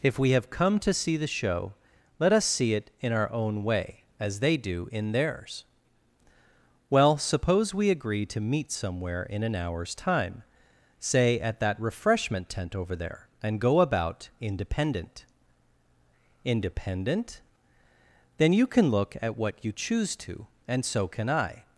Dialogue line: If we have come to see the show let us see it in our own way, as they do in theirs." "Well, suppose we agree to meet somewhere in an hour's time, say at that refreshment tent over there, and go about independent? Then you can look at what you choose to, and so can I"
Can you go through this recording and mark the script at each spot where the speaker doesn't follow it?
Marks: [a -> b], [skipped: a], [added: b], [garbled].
If we have come to see the show let us see it in our own way, as they do in theirs." "Well, suppose we agree to meet somewhere in an hour's time, say at that refreshment tent over there, and go about independent? [added: independent] Then you can look at what you choose to, and so can I"